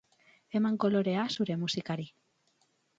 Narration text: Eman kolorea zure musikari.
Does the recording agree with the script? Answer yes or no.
yes